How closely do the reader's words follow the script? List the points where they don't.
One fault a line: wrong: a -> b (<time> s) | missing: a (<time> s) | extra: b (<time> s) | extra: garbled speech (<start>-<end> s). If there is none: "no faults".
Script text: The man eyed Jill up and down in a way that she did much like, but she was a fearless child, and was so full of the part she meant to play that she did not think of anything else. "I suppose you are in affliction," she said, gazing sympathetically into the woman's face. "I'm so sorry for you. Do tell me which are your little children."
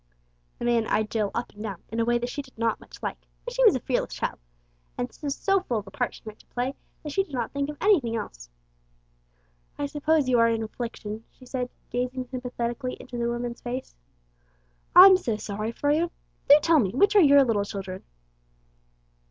extra: not (2.6 s)